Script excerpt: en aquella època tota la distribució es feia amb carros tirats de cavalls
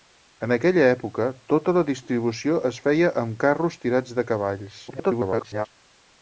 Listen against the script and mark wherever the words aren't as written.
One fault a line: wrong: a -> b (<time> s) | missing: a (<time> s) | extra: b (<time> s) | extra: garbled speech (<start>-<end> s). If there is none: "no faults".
extra: garbled speech (4.9-5.7 s)